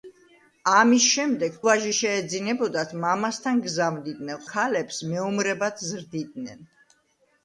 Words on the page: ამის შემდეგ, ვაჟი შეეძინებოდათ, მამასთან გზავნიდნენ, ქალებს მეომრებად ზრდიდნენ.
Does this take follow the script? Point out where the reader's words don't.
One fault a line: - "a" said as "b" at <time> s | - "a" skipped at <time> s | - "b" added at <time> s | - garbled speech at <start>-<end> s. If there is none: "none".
none